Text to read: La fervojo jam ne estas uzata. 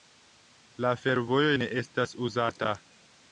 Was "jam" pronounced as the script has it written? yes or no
no